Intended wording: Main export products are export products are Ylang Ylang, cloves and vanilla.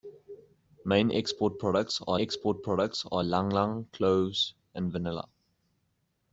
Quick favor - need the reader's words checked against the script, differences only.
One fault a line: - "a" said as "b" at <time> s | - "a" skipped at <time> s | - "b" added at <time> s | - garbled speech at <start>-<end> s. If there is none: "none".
none